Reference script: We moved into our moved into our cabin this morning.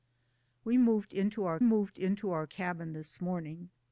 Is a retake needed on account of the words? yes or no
no